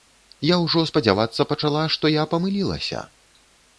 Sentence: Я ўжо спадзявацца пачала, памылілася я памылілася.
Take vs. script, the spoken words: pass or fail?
fail